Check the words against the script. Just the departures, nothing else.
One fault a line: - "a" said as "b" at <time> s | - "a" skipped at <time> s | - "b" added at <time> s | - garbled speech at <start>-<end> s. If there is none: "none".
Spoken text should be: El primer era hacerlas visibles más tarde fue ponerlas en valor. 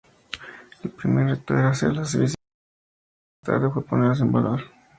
- "reto" added at 1.3 s